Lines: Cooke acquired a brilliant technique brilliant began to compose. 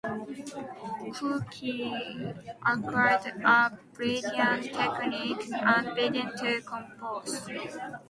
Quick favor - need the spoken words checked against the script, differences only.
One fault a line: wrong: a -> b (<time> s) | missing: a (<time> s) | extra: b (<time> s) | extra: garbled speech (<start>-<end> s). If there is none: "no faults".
wrong: brilliant -> and (5.5 s)